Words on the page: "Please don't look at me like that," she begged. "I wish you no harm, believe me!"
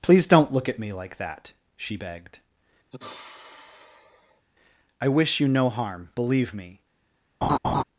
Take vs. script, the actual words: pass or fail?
pass